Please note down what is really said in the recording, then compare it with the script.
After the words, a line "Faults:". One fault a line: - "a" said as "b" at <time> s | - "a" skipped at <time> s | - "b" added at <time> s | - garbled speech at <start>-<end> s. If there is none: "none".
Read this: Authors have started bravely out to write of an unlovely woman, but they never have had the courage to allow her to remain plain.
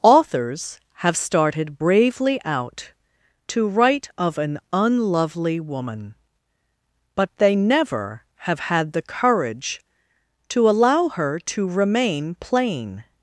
Authors have started bravely out to write of an unlovely woman, but they never have had the courage to allow her to remain plain.
Faults:
none